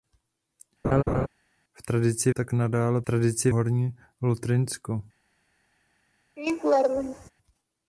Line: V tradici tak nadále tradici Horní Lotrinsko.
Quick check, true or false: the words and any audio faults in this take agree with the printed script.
false